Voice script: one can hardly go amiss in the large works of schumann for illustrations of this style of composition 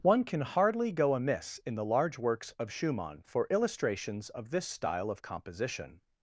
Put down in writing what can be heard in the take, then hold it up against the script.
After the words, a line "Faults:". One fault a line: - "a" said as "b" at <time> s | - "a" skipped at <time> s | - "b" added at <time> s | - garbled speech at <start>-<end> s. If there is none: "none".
one can hardly go amiss in the large works of schumann for illustrations of this style of composition
Faults:
none